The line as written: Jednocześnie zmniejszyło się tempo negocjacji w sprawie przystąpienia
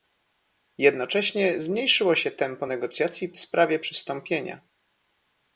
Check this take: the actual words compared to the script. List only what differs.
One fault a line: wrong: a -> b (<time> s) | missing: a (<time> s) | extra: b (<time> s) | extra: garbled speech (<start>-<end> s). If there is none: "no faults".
no faults